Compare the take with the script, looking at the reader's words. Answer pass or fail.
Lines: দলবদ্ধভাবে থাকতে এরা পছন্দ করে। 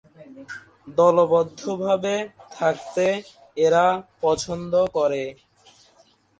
pass